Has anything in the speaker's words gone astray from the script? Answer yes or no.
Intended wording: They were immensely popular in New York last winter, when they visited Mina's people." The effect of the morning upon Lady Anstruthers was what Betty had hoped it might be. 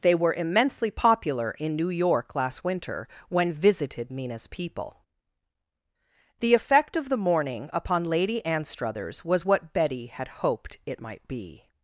yes